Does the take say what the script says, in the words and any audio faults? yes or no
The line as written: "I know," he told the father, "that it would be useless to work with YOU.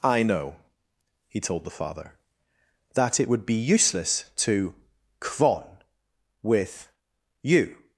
no